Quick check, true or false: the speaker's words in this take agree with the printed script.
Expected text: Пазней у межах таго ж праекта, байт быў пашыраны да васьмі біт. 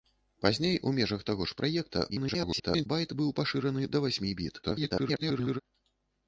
false